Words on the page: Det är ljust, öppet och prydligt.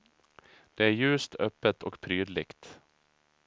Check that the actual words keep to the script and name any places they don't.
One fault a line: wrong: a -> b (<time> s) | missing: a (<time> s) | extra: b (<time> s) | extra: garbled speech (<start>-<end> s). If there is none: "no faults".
no faults